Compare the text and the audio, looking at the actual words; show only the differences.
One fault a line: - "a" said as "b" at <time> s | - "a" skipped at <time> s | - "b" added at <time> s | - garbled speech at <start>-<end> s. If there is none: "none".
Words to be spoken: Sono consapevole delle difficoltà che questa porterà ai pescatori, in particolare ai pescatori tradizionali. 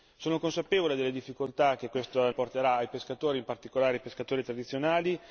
none